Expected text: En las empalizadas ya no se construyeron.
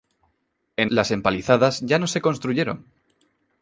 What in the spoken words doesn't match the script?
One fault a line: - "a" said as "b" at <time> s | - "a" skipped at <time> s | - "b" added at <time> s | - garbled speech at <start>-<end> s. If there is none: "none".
none